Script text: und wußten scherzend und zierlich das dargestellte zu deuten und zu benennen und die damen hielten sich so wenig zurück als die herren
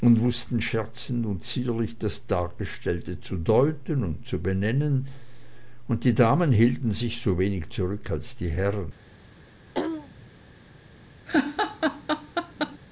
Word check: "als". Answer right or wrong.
right